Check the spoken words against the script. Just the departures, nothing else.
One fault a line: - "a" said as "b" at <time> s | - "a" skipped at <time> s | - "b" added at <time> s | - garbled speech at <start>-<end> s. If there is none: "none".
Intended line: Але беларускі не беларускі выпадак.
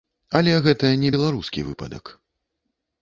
- "беларускі" said as "гэта" at 0.7 s